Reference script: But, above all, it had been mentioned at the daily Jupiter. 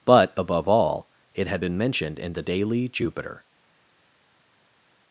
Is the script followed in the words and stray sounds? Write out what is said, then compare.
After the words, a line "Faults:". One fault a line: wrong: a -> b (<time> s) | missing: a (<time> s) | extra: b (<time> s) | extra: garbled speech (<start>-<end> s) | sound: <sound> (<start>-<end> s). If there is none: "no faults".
But, above all, it had been mentioned in the daily Jupiter.
Faults:
wrong: at -> in (2.2 s)